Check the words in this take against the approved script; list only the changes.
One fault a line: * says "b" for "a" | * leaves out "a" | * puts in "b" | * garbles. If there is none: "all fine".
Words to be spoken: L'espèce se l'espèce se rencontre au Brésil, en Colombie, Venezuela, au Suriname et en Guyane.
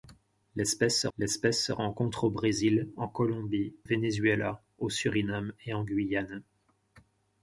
all fine